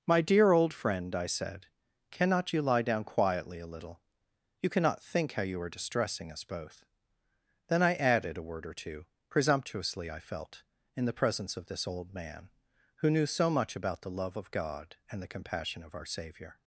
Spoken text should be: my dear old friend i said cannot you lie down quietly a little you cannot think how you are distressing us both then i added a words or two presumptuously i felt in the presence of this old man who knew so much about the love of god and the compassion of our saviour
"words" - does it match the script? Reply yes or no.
no